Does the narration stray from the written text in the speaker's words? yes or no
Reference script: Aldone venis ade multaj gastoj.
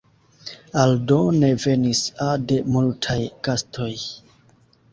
no